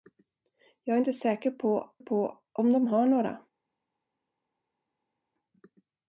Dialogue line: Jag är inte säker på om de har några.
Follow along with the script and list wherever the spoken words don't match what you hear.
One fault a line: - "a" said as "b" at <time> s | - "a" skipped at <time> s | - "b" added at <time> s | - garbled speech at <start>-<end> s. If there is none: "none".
- "på" added at 2.0 s